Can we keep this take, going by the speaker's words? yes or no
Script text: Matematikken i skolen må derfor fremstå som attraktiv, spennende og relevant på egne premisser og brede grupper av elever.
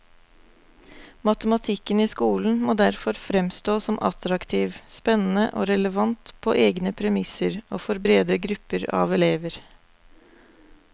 no